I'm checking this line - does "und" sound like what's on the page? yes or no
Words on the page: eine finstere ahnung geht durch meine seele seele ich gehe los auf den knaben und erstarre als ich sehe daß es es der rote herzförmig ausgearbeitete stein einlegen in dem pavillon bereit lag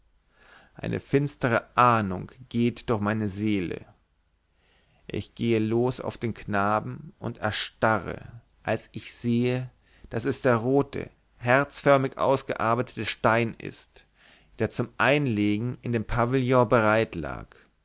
yes